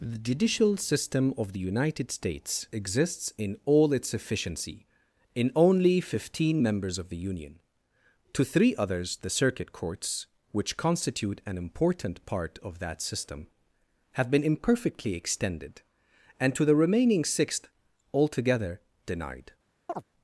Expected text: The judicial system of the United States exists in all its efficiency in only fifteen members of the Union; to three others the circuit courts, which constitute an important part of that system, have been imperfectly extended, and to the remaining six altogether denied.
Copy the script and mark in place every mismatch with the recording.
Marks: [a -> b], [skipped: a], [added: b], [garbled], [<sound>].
The judicial system of the United States exists in all its efficiency in only fifteen members of the Union; to three others the circuit courts, which constitute an important part of that system, have been imperfectly extended, and to the remaining [six -> sixth] altogether denied. [chirp]